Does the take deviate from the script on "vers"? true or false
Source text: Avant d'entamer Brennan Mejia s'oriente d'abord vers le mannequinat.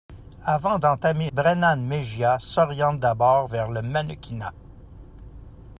false